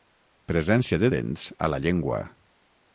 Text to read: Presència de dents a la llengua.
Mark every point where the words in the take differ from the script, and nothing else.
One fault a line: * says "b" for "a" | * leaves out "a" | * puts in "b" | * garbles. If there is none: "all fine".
all fine